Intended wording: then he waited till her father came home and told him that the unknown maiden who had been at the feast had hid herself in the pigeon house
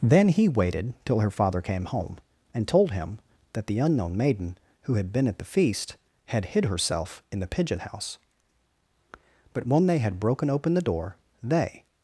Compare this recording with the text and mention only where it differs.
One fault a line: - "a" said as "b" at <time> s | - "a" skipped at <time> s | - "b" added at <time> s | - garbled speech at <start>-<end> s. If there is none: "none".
- "but when they had broken open the door they" added at 9.5 s